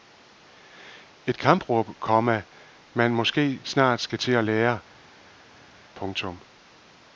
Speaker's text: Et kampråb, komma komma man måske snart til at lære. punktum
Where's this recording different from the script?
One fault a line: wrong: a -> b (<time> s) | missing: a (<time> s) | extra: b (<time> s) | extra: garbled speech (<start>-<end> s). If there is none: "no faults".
missing: komma (2.4 s)
extra: skal (4.0 s)